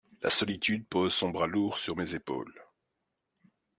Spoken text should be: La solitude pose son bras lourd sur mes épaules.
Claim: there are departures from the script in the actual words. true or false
false